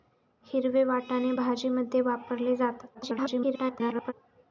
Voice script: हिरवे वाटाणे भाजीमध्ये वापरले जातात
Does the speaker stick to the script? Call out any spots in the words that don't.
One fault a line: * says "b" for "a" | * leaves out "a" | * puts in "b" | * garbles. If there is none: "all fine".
* garbles